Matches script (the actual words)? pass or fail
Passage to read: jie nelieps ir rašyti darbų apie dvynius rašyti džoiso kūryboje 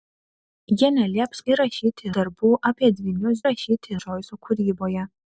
pass